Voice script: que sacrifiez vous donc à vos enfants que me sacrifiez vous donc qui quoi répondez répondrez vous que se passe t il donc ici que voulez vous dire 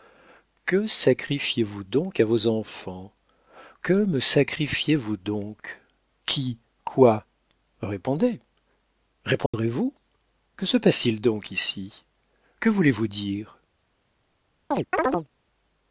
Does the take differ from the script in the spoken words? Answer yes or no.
no